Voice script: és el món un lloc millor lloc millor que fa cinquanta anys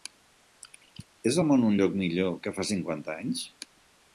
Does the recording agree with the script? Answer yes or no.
no